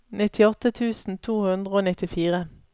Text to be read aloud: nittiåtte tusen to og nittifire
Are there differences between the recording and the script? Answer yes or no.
yes